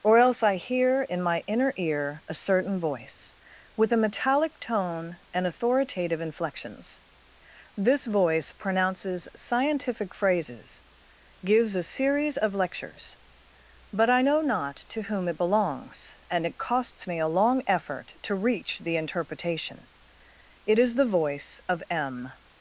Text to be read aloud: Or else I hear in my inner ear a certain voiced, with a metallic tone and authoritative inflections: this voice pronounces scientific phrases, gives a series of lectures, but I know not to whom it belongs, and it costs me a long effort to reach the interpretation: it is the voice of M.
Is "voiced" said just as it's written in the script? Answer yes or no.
no